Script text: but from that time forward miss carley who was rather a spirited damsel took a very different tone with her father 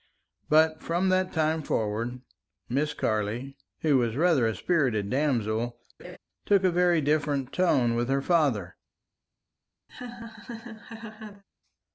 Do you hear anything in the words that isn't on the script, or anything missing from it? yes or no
no